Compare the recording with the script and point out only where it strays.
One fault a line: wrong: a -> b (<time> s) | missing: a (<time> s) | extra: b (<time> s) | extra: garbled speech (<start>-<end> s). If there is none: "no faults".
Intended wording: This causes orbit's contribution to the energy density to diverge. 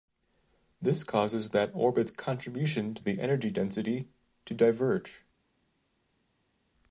extra: that (1.5 s)